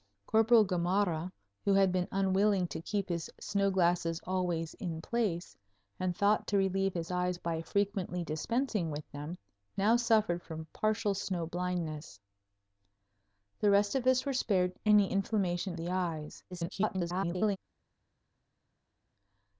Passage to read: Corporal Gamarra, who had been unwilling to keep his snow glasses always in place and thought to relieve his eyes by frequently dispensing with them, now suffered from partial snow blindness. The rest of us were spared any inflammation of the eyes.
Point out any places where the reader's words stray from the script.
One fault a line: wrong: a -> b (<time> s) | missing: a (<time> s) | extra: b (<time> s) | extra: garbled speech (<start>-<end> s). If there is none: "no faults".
missing: of (15.8 s)
extra: garbled speech (16.5-17.6 s)